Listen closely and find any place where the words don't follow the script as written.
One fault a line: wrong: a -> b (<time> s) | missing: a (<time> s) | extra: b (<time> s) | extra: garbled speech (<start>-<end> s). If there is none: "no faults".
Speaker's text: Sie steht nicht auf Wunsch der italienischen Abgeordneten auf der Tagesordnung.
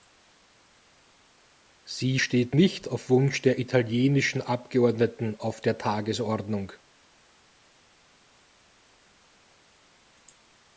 no faults